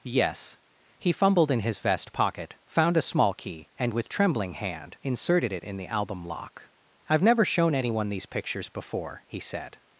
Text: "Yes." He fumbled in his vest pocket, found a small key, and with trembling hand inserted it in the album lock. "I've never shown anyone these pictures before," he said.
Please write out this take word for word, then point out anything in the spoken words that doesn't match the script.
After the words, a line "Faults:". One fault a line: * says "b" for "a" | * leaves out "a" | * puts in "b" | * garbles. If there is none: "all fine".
"Yes." He fumbled in his vest pocket, found a small key, and with trembling hand inserted it in the album lock. "I've never shown anyone these pictures before," he said.
Faults:
all fine